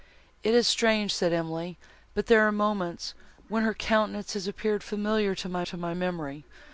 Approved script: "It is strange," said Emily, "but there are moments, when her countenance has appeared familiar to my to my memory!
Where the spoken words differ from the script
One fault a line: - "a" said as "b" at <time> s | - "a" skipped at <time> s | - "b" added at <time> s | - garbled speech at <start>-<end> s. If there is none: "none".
none